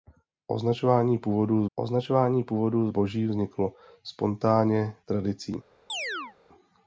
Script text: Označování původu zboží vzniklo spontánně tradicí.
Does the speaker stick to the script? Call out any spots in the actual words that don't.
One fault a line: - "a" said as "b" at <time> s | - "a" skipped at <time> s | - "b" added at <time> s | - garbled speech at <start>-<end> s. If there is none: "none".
- "označování původu" added at 1.8 s